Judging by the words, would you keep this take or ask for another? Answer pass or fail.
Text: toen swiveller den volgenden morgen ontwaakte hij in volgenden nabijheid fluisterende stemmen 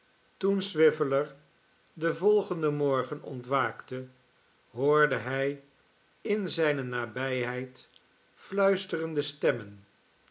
fail